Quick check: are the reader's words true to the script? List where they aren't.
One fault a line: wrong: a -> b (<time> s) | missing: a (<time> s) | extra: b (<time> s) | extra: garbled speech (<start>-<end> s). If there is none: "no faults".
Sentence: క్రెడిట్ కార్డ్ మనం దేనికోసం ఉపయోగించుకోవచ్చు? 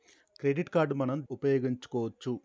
missing: దేనికోసం (1.2 s)